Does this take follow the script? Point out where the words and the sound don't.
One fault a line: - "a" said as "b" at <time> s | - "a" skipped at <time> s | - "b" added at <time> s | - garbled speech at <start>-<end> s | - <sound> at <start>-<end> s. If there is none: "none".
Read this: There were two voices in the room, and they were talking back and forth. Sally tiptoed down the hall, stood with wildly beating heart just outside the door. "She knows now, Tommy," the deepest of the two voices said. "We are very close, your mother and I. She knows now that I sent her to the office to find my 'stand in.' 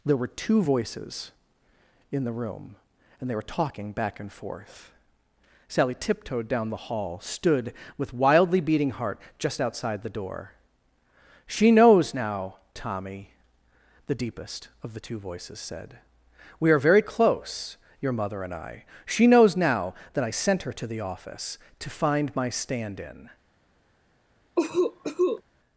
- cough at 24.6-25.4 s